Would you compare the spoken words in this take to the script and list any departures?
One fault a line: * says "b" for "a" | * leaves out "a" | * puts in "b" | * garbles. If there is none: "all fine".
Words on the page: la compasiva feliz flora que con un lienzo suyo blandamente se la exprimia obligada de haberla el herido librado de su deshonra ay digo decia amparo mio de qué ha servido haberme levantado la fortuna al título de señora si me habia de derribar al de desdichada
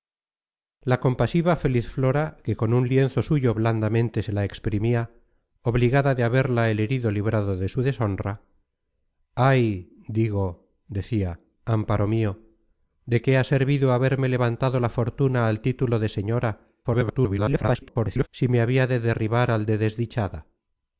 * garbles